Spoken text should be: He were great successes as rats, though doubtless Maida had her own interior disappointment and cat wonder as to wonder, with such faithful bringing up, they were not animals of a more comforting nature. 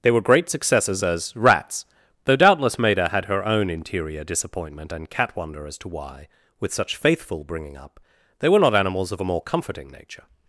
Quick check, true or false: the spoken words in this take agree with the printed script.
false